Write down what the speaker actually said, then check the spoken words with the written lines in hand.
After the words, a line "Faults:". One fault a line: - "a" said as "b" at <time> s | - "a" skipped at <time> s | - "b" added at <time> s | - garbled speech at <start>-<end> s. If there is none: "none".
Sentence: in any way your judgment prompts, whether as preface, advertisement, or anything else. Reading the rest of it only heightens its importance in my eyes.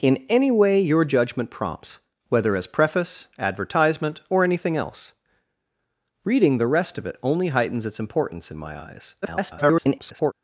in any way your judgment prompts, whether as preface, advertisement, or anything else. Reading the rest of it only heightens its importance in my eyes. [garbled]
Faults:
- garbled speech at 9.2-10.3 s